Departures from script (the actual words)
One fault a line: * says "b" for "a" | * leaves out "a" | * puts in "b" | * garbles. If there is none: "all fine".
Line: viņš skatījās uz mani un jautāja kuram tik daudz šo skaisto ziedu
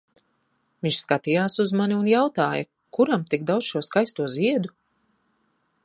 all fine